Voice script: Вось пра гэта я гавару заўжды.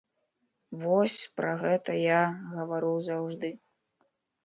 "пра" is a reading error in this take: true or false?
false